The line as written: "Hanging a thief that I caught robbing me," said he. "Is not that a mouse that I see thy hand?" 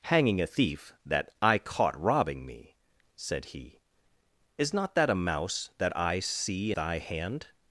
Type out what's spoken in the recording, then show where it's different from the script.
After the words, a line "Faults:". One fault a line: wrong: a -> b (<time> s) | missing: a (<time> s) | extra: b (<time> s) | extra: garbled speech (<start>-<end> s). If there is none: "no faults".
"Hanging a thief that I caught robbing me," said he. "Is not that a mouse that I see thy hand?"
Faults:
no faults